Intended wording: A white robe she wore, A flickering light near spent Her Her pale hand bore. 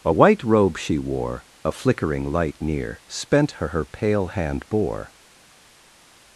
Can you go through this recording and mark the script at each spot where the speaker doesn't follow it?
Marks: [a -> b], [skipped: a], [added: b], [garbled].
A white robe she wore, A flickering light near spent Her Her pale hand bore.